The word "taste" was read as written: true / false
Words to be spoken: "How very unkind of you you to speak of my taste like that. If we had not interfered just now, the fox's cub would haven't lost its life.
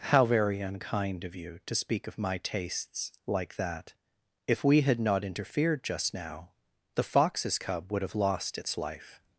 false